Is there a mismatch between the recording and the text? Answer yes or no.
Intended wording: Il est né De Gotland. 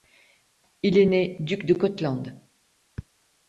yes